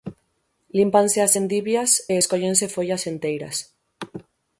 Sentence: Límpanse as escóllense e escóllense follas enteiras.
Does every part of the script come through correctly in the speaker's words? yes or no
no